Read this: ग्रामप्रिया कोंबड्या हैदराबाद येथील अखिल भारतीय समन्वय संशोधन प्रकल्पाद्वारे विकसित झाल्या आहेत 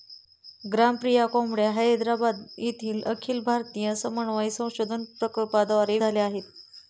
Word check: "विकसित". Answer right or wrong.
wrong